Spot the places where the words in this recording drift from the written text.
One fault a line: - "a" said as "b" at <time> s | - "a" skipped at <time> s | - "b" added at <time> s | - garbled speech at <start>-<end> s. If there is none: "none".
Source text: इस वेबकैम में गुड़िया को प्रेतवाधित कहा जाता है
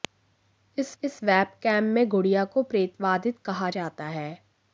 - "इस" added at 1.0 s